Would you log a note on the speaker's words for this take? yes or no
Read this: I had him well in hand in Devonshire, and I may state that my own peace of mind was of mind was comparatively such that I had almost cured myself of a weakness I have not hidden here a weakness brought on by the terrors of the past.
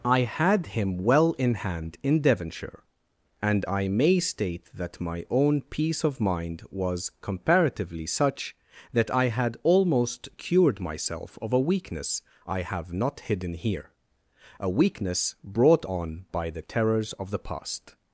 yes